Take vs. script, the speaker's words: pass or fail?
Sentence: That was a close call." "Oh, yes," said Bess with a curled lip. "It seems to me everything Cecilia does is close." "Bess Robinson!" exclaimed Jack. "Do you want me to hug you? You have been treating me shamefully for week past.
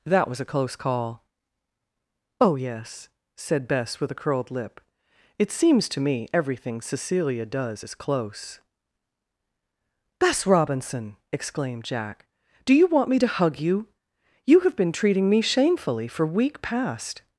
pass